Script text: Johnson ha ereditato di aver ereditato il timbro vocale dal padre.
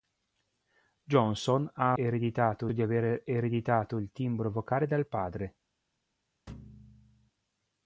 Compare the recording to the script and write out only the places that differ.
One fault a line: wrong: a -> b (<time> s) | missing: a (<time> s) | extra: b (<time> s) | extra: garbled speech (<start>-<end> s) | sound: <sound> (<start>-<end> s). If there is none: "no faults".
sound: thud (6.5-7.3 s)